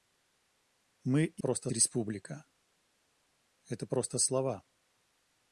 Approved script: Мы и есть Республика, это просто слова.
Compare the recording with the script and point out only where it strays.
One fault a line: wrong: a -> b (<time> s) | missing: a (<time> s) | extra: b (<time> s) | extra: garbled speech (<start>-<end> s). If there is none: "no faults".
wrong: есть -> просто (1.4 s)